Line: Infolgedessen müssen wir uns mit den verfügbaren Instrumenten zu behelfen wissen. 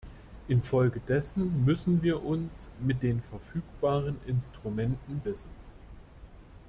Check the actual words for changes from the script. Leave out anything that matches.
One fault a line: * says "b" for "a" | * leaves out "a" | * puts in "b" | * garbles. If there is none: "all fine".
* leaves out "zu behelfen"